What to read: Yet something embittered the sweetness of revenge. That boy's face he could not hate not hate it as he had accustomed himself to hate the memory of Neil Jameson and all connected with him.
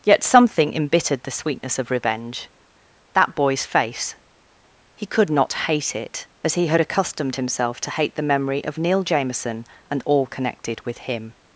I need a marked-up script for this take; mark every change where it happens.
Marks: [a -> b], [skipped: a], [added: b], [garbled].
Yet something embittered the sweetness of revenge. That boy's face he could not hate [skipped: not hate] it as he had accustomed himself to hate the memory of Neil Jameson and all connected with him.